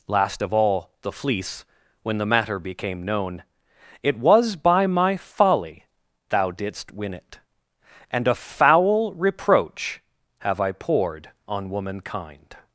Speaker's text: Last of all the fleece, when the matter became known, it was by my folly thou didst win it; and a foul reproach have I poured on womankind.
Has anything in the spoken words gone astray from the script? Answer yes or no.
no